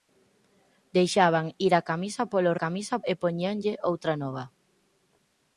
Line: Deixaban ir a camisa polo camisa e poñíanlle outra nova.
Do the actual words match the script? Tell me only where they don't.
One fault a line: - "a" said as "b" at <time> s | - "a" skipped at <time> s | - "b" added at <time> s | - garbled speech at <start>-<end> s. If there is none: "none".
none